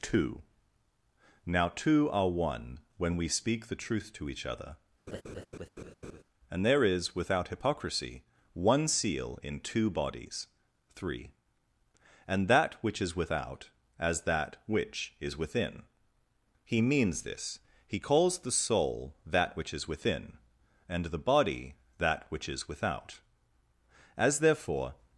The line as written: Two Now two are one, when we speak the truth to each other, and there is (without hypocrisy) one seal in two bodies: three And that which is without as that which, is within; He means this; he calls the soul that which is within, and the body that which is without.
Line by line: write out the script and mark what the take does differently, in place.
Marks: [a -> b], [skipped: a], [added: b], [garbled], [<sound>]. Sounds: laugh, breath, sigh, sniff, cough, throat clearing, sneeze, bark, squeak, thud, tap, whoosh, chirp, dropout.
Two Now two are one, when we speak the truth to each other, [laugh] and there is (without hypocrisy) one seal in two bodies: three And that which is without as that which, is within; He means this; he calls the soul that which is within, and the body that which is without. [added: As therefore]